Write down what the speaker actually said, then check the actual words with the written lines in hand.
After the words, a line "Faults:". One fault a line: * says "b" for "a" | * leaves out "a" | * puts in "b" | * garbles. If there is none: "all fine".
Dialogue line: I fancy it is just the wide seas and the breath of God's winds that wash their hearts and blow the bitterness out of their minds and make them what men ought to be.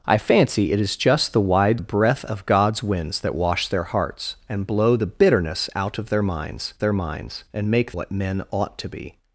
I fancy it is just the wide the breath of God's winds that wash their hearts and blow the bitterness out of their minds their minds and make what men ought to be.
Faults:
* leaves out "seas and"
* puts in "their minds"
* leaves out "them"